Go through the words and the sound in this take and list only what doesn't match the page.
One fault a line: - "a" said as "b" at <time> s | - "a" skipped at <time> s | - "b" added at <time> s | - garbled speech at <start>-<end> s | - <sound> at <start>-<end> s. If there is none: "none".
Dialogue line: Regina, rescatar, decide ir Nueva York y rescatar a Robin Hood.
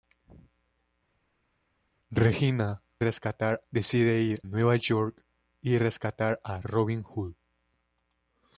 none